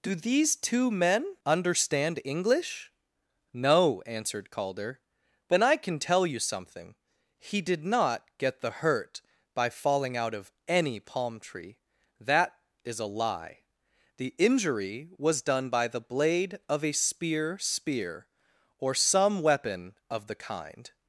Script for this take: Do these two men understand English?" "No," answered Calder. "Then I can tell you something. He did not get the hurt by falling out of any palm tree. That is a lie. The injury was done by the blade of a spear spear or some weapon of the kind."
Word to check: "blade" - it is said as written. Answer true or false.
true